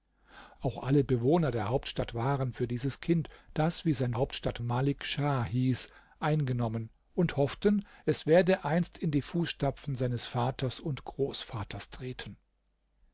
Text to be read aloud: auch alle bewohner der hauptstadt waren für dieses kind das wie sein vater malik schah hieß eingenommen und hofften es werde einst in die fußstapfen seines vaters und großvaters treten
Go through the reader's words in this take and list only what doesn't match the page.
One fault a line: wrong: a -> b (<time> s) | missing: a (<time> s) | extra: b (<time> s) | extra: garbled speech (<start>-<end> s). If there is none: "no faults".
wrong: vater -> hauptstadt (4.2 s)